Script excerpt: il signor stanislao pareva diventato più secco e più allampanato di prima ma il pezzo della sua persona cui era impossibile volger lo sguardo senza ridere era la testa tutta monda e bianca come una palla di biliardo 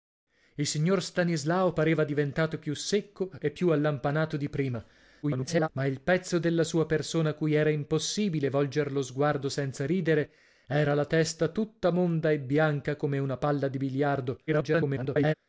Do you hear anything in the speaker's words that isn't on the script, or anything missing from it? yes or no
yes